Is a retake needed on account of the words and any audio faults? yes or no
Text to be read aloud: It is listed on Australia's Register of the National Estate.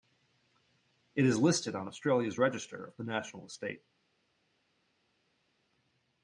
no